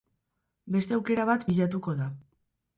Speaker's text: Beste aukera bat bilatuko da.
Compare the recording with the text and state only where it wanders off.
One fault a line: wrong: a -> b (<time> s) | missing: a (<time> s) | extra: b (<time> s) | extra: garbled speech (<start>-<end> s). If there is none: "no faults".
no faults